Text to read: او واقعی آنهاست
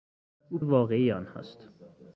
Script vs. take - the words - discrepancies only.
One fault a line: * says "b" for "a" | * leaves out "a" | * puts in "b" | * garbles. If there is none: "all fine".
all fine